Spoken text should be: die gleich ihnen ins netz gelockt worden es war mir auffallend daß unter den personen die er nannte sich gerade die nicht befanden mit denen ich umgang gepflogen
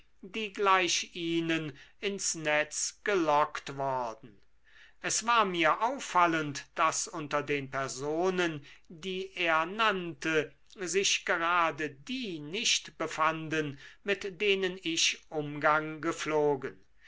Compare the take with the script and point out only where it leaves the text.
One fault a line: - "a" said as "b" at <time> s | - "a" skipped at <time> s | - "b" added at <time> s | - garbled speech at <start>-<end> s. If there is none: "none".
none